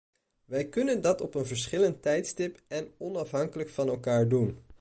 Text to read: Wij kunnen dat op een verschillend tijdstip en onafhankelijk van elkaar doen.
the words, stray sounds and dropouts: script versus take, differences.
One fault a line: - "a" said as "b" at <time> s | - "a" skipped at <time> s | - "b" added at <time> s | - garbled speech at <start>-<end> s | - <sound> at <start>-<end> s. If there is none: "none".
none